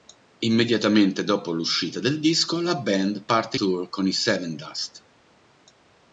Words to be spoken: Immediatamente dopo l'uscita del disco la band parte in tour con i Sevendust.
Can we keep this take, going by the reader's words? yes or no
no